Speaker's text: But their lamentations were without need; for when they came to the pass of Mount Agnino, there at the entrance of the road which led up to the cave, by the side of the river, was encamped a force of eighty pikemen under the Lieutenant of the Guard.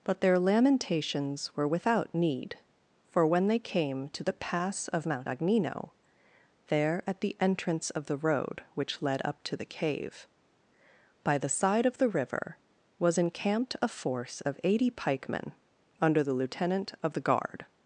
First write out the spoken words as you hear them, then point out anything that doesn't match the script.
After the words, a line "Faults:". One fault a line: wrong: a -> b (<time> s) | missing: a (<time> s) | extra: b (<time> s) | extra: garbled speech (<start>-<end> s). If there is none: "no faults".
But their lamentations were without need; for when they came to the pass of Mount Agnino, there at the entrance of the road which led up to the cave, by the side of the river, was encamped a force of eighty pikemen under the Lieutenant of the Guard.
Faults:
no faults